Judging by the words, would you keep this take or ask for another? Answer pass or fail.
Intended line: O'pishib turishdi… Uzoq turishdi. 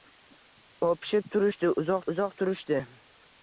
fail